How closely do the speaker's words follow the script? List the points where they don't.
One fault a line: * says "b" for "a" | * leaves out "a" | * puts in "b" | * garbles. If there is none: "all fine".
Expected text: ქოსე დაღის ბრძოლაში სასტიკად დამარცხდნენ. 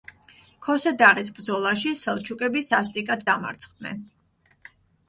* puts in "სელჩუკები"